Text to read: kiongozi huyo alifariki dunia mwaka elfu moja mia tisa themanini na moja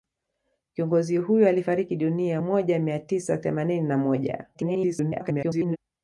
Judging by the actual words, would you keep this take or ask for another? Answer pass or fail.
fail